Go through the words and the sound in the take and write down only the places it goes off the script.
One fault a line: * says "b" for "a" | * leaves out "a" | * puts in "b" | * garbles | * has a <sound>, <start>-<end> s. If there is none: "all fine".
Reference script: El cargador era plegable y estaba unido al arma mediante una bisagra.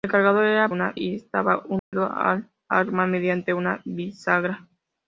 * says "una" for "plegable"
* has a dropout, 1.8-1.9 s